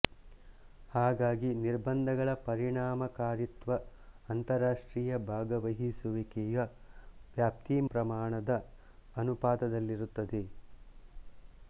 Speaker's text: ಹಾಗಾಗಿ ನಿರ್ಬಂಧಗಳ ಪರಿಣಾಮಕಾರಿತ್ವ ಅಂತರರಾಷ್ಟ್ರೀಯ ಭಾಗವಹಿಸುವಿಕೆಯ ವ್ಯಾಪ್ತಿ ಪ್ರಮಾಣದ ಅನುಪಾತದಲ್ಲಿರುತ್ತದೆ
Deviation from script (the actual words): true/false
false